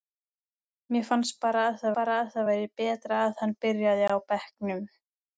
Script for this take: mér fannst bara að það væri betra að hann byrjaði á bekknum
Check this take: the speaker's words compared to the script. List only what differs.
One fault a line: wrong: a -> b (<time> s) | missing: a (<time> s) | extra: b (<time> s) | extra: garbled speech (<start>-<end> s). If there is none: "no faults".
extra: bara að það (2.0 s)